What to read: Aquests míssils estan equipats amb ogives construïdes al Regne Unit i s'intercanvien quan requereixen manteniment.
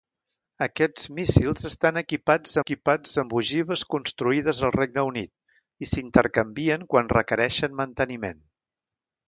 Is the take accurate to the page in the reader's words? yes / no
no